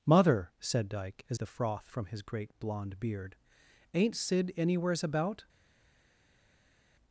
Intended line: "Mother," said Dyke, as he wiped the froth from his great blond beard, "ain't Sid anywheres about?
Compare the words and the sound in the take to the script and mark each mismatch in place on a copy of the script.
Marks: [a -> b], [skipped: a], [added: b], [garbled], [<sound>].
"Mother," said Dyke, as [skipped: he wiped] the froth from his great blond beard, "ain't Sid anywheres about?